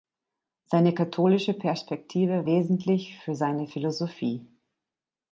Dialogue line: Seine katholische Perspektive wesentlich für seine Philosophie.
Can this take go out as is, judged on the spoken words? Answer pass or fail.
pass